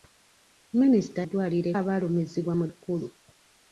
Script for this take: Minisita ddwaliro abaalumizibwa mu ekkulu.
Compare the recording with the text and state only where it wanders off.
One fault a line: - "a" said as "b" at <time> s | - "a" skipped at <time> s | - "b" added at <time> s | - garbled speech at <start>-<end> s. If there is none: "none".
none